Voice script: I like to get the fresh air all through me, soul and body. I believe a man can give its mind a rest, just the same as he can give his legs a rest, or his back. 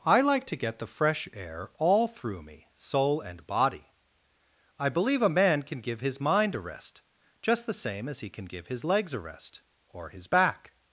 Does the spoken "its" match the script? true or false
false